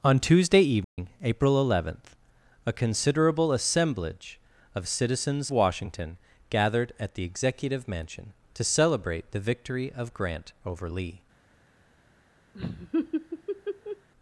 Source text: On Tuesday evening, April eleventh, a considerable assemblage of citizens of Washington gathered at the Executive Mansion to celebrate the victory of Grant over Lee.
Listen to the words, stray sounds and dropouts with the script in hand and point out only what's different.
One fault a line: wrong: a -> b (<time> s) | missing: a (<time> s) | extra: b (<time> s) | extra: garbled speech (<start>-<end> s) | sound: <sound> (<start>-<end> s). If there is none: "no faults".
sound: dropout (0.8-1.0 s)
missing: of (5.5 s)
sound: laugh (12.5-14.1 s)